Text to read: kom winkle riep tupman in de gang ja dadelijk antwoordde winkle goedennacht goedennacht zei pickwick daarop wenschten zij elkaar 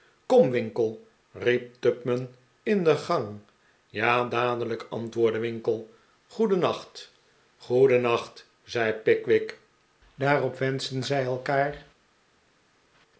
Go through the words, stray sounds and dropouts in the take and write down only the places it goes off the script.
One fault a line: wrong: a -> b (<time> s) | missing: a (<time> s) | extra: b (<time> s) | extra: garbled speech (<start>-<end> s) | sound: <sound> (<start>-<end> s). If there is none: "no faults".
no faults